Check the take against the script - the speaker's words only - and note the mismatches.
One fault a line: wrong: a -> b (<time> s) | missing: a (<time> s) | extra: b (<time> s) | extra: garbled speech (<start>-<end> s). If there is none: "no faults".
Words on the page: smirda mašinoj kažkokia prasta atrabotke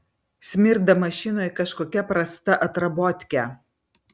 no faults